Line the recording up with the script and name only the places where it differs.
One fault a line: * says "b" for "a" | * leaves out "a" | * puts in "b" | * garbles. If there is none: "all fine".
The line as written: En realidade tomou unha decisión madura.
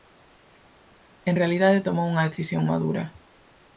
all fine